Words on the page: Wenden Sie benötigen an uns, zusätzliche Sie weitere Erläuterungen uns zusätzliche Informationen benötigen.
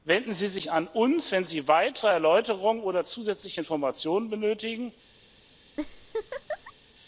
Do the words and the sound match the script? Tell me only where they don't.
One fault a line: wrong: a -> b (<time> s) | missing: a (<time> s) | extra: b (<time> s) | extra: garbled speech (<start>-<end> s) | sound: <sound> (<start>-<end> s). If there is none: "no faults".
wrong: benötigen -> sich (0.5 s)
wrong: zusätzliche -> wenn (1.3 s)
wrong: uns -> oder (2.8 s)
sound: laugh (5.8-6.7 s)